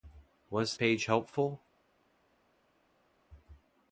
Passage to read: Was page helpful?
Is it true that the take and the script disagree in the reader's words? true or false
false